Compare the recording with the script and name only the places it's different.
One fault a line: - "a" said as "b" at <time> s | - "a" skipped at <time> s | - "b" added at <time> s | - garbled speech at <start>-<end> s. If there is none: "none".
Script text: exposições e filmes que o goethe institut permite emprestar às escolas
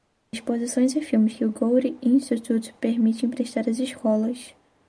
none